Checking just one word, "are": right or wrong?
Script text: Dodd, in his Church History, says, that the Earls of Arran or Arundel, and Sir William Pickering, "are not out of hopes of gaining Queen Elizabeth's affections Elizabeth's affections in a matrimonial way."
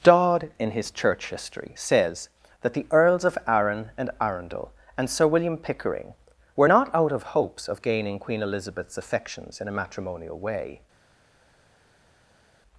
wrong